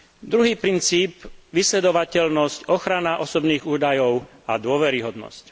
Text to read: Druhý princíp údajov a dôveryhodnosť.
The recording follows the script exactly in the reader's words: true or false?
false